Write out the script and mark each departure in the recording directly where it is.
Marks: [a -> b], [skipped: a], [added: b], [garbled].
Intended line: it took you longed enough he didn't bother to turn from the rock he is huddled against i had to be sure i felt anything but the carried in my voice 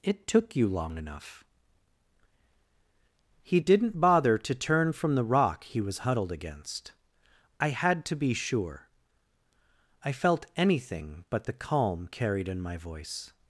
it took you [longed -> long] enough he didn't bother to turn from the rock he [is -> was] huddled against i had to be sure i felt anything but the [added: calm] carried in my voice